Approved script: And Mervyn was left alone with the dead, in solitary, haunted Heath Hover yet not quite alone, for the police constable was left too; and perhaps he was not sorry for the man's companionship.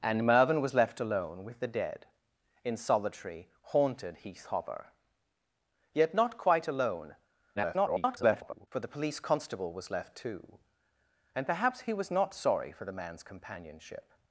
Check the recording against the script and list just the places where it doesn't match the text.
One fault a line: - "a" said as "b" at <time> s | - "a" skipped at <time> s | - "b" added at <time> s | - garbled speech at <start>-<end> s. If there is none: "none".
- garbled speech at 7.6-8.7 s